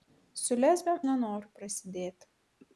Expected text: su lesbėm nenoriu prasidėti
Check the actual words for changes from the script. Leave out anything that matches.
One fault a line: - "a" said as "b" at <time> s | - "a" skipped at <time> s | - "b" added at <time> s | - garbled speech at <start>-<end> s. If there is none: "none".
none